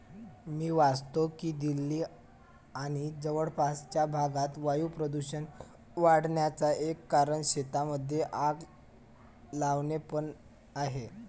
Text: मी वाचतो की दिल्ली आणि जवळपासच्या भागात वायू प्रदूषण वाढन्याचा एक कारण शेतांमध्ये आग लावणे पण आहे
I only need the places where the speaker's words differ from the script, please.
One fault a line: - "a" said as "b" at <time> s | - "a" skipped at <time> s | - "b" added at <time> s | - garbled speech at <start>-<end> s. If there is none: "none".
none